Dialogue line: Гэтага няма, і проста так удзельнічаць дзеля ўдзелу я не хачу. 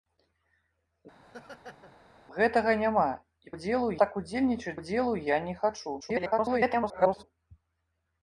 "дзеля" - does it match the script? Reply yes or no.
no